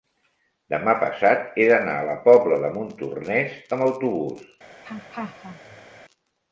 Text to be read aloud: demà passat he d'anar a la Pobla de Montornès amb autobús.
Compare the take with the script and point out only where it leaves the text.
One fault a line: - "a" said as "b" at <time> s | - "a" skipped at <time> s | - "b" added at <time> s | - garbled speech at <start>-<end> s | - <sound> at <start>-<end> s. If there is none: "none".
- laugh at 4.8-6.0 s